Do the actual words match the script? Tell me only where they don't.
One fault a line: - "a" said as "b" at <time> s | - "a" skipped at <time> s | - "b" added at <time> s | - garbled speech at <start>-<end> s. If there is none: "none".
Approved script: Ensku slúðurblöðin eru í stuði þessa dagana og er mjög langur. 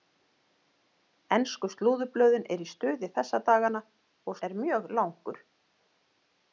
none